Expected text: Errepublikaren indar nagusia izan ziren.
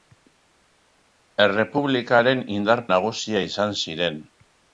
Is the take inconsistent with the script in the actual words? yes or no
no